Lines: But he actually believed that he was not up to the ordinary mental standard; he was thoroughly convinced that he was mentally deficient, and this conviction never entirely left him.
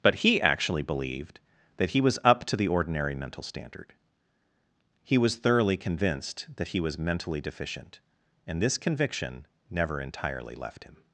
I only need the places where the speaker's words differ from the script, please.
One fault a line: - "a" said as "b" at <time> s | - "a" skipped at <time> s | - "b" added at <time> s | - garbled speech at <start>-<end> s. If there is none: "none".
- "not" skipped at 2.2 s